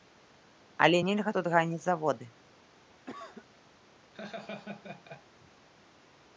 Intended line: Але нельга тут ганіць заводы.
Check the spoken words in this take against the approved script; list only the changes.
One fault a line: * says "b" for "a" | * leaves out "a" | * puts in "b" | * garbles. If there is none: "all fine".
all fine